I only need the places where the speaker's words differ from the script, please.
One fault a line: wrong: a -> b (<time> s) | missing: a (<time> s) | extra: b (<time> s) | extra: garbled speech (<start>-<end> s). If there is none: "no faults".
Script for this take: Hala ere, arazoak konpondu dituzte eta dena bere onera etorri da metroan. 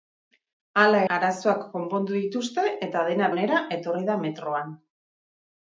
missing: ere (1.0 s)
missing: bere (3.3 s)